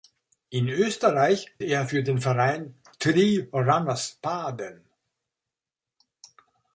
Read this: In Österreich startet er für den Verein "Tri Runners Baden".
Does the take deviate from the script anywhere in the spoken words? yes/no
yes